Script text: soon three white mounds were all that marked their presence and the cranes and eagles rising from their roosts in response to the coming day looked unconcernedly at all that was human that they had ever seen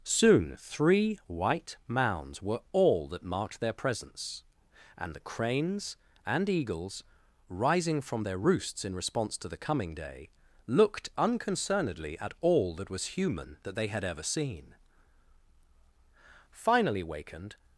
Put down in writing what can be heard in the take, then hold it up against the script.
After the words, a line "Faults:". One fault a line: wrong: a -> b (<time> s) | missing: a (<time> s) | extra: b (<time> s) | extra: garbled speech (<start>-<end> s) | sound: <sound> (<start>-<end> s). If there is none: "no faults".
soon three white mounds were all that marked their presence and the cranes and eagles rising from their roosts in response to the coming day looked unconcernedly at all that was human that they had ever seen finally wakened
Faults:
extra: finally wakened (16.5 s)